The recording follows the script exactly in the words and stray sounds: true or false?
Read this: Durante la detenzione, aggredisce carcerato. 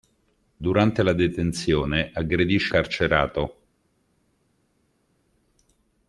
true